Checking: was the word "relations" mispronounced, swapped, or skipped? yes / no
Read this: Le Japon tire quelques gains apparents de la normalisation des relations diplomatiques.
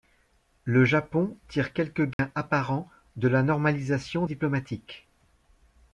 yes